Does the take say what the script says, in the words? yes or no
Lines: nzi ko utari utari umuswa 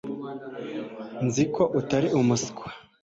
no